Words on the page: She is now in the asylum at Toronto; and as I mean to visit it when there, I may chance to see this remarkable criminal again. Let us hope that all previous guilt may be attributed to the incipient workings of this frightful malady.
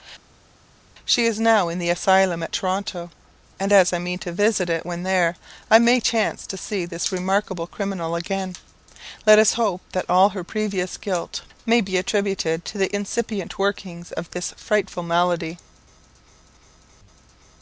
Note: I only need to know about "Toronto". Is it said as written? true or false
true